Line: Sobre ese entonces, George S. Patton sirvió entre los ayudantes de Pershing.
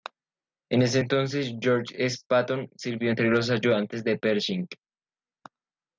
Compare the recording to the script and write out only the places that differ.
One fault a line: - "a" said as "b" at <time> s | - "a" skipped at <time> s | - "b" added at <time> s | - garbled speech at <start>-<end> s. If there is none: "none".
- "Sobre" said as "En" at 0.7 s